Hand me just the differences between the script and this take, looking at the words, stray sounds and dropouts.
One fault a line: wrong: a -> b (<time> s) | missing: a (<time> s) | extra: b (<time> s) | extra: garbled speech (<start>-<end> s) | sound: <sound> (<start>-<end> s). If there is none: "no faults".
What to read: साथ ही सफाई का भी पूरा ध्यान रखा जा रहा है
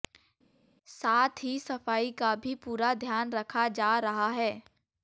no faults